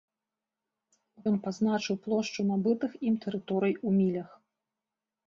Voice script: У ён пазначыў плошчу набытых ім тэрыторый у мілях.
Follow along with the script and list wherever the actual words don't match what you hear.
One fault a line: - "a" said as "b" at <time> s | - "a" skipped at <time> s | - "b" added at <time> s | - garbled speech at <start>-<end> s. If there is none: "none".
none